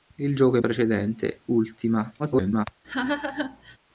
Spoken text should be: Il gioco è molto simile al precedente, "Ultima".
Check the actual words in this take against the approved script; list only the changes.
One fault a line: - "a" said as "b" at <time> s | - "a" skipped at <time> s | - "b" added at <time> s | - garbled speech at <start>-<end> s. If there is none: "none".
- "molto simile al" skipped at 0.6 s
- garbled speech at 2.2-2.7 s